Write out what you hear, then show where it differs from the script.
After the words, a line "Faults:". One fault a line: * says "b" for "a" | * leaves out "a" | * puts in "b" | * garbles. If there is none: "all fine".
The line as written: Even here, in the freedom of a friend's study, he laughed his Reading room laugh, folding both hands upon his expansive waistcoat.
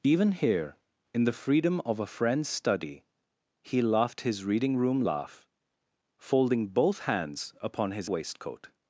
Even here, in the freedom of a friend's study, he laughed his Reading room laugh, folding both hands upon his waistcoat.
Faults:
* leaves out "expansive"